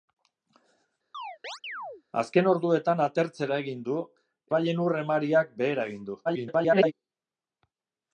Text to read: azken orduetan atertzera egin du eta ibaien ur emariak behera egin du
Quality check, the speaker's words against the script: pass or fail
fail